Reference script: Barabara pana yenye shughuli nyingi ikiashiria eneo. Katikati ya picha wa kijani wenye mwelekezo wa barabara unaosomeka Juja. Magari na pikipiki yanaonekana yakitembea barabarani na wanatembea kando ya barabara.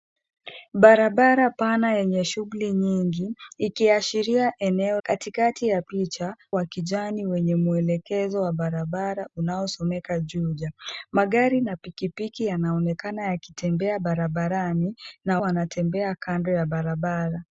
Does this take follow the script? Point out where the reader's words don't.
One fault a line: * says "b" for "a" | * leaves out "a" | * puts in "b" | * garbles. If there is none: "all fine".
all fine